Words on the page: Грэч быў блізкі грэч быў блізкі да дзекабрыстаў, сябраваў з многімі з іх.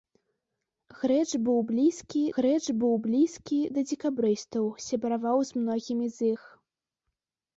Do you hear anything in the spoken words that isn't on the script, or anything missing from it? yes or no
no